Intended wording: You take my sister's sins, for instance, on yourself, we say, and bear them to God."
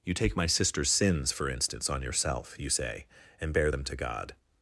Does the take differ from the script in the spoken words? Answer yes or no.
yes